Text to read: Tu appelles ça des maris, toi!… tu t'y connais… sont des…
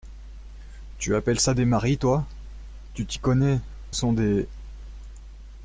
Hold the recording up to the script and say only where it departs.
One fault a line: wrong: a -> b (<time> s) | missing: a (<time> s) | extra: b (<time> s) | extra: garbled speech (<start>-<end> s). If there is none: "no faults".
no faults